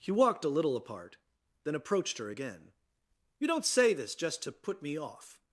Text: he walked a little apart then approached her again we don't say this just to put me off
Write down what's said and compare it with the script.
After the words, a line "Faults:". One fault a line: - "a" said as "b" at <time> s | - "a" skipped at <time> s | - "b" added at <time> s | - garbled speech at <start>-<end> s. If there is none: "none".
he walked a little apart then approached her again you don't say this just to put me off
Faults:
- "we" said as "you" at 3.4 s